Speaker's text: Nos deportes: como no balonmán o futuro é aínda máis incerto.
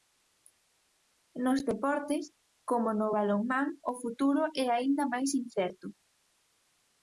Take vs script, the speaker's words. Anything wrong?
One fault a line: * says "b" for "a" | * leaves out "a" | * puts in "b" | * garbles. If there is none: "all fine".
all fine